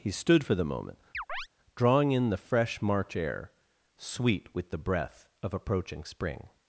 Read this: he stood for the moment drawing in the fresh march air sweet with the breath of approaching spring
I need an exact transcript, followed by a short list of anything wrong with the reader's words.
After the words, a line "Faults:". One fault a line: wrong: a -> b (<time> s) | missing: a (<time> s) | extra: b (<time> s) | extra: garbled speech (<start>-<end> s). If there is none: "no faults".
he stood for the moment drawing in the fresh march air sweet with the breath of approaching spring
Faults:
no faults